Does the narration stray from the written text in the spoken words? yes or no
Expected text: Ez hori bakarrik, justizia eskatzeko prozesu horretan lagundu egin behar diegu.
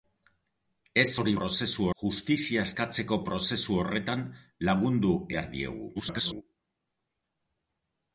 yes